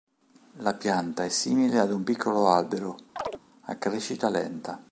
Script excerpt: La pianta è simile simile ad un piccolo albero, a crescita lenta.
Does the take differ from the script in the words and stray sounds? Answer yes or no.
yes